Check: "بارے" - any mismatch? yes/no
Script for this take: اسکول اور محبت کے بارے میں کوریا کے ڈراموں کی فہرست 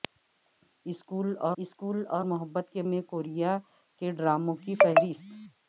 yes